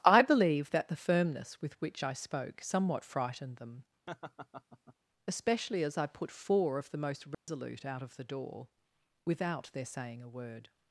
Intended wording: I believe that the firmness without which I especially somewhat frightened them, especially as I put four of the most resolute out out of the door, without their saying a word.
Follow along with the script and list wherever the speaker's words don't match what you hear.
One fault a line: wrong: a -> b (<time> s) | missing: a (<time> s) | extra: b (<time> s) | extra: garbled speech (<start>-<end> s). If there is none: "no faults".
wrong: without -> with (1.6 s)
wrong: especially -> spoke (2.1 s)
missing: out (8.0 s)